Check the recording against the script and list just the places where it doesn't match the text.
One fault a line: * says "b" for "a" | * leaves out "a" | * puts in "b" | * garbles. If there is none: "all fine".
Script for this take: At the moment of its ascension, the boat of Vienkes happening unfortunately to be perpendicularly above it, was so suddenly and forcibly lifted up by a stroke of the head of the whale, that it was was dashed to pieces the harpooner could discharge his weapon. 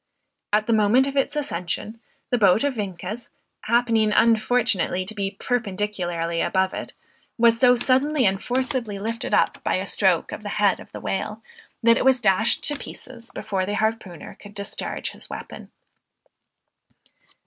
* leaves out "was"
* puts in "before"